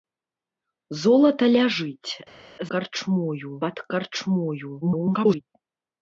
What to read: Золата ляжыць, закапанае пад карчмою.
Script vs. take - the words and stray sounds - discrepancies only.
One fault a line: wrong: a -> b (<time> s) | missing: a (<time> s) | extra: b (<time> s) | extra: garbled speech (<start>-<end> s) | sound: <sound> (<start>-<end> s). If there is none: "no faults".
wrong: закапанае -> карчмою (2.7 s)
extra: garbled speech (4.8-5.4 s)